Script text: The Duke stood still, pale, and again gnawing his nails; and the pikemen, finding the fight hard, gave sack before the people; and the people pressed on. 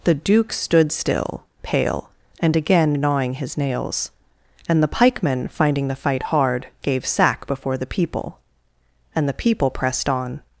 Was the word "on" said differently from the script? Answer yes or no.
no